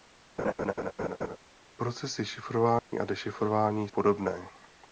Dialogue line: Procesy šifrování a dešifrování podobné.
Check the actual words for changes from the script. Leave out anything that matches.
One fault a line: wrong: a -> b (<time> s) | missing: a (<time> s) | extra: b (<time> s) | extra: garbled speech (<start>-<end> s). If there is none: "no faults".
no faults